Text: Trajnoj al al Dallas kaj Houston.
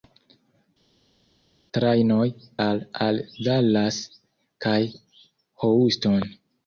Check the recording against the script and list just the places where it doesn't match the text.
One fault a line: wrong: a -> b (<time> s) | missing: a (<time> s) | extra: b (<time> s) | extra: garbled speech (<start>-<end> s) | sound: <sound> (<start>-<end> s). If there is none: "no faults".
no faults